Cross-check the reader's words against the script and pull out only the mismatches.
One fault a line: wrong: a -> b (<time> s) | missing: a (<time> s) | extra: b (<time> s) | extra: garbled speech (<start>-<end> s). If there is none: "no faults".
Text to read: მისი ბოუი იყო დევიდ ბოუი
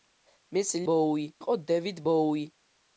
no faults